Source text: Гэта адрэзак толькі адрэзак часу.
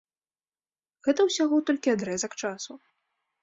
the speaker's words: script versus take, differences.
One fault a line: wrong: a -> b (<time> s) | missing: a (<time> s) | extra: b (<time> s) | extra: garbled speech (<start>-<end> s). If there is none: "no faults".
wrong: адрэзак -> ўсяго (1.3 s)